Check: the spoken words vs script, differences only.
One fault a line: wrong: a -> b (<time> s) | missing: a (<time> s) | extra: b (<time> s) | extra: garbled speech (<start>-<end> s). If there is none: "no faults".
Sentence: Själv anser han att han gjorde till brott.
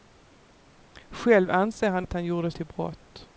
no faults